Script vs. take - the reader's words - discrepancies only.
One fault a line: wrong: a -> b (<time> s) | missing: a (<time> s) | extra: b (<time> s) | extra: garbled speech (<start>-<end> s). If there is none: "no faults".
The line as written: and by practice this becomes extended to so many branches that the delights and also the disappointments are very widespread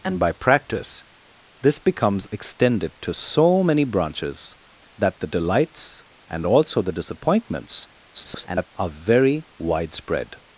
extra: garbled speech (8.1-8.7 s)